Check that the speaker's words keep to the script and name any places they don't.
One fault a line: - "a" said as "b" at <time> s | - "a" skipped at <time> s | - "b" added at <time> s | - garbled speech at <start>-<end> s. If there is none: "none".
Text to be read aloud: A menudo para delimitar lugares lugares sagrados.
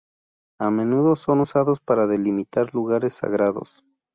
- "son usados" added at 1.1 s
- "lugares" skipped at 3.1 s